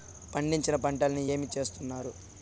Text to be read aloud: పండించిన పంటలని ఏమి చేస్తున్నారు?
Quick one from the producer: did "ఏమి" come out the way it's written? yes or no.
yes